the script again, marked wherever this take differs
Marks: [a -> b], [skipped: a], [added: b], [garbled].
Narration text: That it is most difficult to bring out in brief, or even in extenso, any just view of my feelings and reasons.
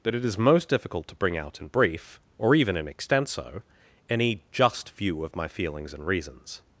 That it is most difficult to bring out in brief, or even in extenso, any just view of my feelings and reasons.